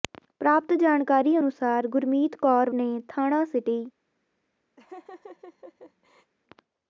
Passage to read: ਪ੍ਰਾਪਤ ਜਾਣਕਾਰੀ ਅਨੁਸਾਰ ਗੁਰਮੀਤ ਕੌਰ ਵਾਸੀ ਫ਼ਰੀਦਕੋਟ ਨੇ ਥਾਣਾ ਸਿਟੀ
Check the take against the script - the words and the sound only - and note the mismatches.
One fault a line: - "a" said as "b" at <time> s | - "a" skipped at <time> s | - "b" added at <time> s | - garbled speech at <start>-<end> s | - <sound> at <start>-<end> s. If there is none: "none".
- "ਵਾਸੀ ਫ਼ਰੀਦਕੋਟ" skipped at 2.7 s
- laugh at 4.8-6.3 s